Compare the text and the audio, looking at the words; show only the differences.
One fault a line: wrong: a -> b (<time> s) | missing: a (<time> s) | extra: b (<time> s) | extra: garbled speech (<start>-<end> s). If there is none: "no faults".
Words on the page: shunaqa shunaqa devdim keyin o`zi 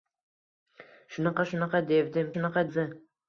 wrong: keyin -> shunaqa (2.3 s)